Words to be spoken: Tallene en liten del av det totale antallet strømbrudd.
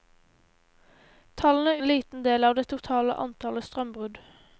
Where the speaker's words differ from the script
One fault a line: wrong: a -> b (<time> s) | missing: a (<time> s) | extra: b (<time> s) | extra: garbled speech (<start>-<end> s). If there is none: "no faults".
no faults